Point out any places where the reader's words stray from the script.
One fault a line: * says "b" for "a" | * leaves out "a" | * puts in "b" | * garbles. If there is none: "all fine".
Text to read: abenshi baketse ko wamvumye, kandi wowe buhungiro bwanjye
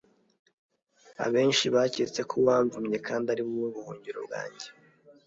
* puts in "ari"